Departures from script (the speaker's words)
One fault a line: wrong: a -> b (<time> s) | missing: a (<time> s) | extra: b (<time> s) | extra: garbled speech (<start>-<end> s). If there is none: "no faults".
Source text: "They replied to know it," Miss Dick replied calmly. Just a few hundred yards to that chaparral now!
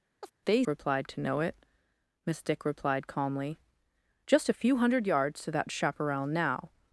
no faults